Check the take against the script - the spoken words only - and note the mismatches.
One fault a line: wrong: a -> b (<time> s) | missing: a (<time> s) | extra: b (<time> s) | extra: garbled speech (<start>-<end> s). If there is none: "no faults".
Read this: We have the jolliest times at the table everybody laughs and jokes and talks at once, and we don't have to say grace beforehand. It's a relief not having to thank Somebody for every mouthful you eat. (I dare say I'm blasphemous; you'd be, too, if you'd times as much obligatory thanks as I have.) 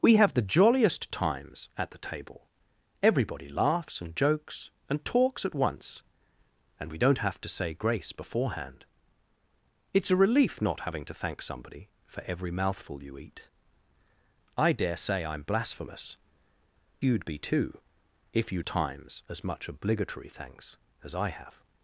no faults